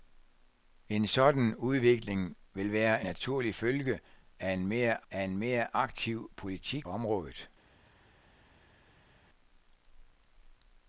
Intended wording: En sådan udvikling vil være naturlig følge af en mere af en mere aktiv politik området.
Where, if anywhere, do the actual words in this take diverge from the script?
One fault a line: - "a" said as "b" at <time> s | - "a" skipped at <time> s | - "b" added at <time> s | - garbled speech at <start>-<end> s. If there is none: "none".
none